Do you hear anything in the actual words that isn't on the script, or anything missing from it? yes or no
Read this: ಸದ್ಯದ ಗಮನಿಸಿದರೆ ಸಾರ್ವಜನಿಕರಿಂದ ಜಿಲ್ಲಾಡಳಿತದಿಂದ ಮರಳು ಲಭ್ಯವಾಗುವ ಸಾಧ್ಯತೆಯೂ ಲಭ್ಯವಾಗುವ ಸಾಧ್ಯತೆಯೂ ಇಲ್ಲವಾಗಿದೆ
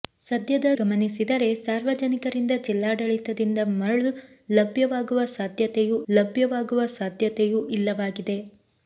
no